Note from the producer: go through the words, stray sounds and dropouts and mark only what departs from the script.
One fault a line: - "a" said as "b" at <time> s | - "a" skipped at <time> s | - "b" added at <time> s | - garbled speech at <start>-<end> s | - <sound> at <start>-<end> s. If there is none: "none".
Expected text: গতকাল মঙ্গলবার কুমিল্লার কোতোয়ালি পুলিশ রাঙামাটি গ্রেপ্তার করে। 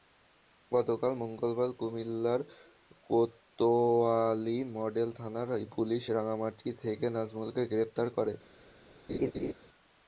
- "মডেল থানার" added at 4.8 s
- "থেকে নাজমুলকে" added at 6.8 s
- laugh at 9.1-9.5 s